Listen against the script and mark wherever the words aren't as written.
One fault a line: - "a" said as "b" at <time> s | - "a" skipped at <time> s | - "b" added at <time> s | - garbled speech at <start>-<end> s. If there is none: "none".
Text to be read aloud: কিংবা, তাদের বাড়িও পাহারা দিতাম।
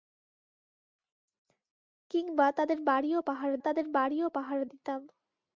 - "তাদের বাড়িও পাহারা" added at 3.6 s